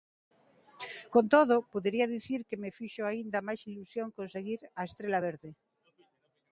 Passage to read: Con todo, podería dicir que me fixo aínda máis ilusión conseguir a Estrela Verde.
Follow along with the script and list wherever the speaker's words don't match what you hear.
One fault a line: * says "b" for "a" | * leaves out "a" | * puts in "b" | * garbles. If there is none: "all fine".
all fine